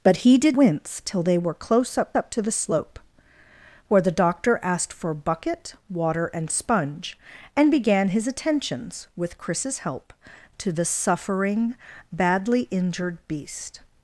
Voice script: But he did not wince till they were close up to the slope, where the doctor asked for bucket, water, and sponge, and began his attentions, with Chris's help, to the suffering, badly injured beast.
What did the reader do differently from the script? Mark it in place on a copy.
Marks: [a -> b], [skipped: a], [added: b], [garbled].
But he did [skipped: not] wince till they were close up [added: up] to the slope, where the doctor asked for bucket, water, and sponge, and began his attentions, with Chris's help, to the suffering, badly injured beast.